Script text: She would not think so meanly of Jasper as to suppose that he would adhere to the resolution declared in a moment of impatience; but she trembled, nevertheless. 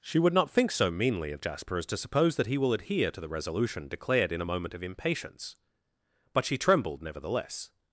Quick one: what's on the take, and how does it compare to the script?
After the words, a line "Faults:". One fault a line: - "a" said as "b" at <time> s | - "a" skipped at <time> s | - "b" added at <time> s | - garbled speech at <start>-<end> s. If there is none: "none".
She would not think so meanly of Jasper as to suppose that he will adhere to the resolution declared in a moment of impatience; but she trembled, nevertheless.
Faults:
- "would" said as "will" at 2.6 s